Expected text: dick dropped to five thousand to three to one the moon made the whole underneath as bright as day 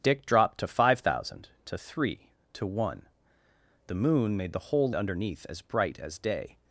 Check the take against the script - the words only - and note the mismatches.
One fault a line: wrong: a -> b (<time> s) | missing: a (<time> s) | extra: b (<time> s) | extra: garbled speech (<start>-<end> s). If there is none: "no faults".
no faults